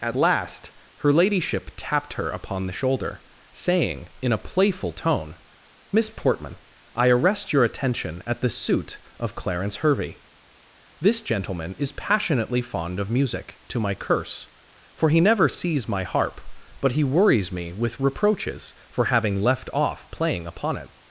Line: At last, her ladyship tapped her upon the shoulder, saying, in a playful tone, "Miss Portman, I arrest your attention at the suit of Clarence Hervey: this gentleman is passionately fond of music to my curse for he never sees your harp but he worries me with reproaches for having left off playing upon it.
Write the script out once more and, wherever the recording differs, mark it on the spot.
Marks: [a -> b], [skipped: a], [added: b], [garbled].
At last, her ladyship tapped her upon the shoulder, saying, in a playful tone, "Miss Portman, I arrest your attention at the suit of Clarence Hervey: this gentleman is passionately fond of music to my curse for he never sees [your -> my] harp but he worries me with reproaches for having left off playing upon it.